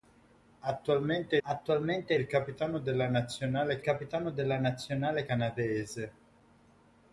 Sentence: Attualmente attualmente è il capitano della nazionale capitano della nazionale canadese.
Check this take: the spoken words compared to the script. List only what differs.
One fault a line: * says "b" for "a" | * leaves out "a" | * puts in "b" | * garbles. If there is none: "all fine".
all fine